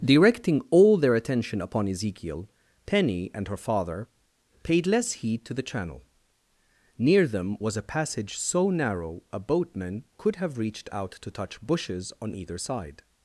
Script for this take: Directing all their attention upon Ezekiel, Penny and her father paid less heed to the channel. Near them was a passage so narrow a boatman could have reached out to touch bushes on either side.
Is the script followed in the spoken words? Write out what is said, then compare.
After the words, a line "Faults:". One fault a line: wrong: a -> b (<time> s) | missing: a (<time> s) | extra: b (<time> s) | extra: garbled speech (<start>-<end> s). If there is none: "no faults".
Directing all their attention upon Ezekiel, Penny and her father paid less heed to the channel. Near them was a passage so narrow a boatman could have reached out to touch bushes on either side.
Faults:
no faults